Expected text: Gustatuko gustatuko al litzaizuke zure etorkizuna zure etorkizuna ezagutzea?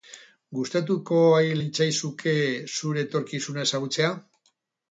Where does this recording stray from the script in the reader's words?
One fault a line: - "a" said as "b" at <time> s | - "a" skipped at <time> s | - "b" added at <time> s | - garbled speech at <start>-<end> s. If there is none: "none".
- "gustatuko" skipped at 1.2 s
- "zure etorkizuna" skipped at 3.7 s